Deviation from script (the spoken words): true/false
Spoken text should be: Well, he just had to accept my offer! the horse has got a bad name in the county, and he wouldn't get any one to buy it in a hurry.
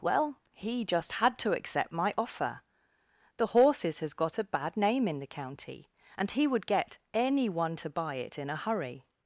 true